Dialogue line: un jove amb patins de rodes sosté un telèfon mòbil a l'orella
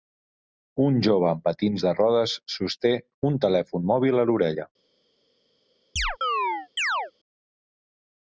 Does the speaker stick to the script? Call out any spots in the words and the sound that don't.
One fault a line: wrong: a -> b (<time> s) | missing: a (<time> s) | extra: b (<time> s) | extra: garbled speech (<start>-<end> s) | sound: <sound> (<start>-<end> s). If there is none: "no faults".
sound: chirp (6.0-7.1 s)